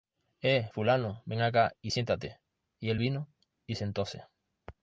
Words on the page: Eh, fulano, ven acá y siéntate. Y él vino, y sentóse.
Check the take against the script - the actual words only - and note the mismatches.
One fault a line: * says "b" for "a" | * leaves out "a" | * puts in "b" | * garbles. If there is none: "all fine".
all fine